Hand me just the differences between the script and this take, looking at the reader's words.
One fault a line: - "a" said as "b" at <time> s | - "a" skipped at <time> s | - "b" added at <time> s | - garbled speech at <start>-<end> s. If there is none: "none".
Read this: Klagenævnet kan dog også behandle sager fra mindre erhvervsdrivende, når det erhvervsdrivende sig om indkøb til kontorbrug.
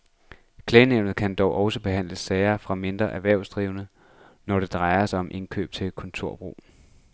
- "erhvervsdrivende" said as "drejer" at 4.7 s